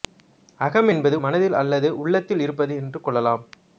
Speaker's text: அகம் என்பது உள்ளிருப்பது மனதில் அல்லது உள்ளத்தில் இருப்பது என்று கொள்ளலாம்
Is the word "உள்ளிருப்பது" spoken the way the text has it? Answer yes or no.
no